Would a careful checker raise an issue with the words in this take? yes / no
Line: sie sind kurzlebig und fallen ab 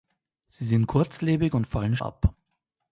no